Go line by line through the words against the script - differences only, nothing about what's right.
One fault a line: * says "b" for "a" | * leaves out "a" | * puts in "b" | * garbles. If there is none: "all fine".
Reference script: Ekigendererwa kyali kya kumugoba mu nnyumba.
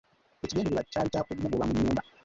all fine